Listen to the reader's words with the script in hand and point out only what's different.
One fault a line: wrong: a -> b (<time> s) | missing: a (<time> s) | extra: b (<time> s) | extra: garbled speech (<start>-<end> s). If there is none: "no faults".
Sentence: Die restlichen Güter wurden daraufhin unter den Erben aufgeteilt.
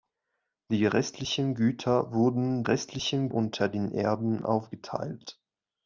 wrong: daraufhin -> restlichen (2.6 s)